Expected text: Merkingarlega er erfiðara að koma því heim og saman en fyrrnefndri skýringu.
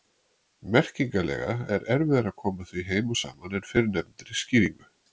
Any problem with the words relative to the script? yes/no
no